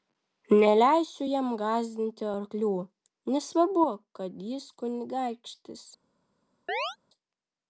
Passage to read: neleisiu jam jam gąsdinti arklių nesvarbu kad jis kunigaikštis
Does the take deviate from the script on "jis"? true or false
false